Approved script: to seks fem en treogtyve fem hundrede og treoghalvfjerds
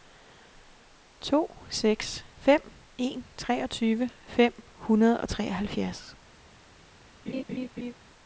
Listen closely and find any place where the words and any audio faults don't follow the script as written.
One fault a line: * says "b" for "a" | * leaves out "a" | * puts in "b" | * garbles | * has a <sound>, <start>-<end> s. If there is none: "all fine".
* has a laugh, 7.3-7.9 s